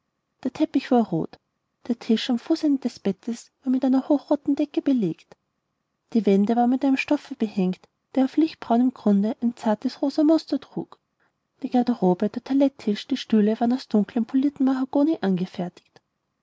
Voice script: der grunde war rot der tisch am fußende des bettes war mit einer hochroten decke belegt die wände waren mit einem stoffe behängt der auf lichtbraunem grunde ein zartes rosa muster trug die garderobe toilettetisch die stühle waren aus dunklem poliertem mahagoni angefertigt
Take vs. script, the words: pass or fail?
fail